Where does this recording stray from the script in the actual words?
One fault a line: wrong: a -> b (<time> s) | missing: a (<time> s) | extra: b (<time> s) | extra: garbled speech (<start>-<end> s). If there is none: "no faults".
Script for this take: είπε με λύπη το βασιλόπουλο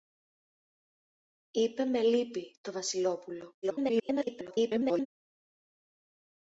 extra: garbled speech (3.6-5.1 s)